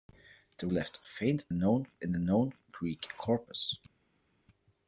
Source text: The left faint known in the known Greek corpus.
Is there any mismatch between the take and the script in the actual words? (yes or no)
no